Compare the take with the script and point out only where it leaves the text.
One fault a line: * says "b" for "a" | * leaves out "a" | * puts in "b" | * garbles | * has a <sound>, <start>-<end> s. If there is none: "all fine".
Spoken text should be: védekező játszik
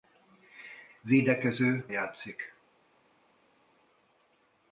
all fine